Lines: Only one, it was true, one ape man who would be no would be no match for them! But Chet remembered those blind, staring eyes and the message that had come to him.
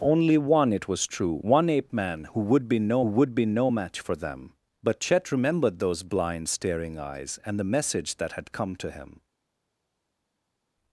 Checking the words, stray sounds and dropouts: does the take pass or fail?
pass